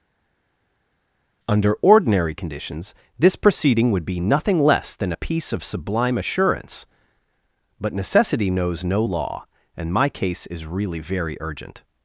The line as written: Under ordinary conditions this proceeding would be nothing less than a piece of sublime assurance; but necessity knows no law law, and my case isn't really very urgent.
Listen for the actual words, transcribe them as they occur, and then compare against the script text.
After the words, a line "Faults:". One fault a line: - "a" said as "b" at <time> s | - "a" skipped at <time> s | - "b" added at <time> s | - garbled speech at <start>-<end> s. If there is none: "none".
Under ordinary conditions this proceeding would be nothing less than a piece of sublime assurance; but necessity knows no law, and my case is really very urgent.
Faults:
- "law" skipped at 9.5 s
- "isn't" said as "is" at 10.5 s